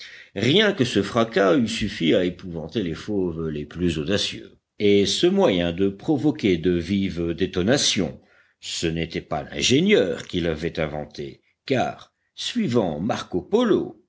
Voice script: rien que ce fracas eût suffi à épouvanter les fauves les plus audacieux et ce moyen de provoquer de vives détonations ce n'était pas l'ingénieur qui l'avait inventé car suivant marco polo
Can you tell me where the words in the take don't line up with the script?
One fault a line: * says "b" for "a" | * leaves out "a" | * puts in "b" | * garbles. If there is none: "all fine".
all fine